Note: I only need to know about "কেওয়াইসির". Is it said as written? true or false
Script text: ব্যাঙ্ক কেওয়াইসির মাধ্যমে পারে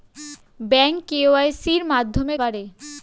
true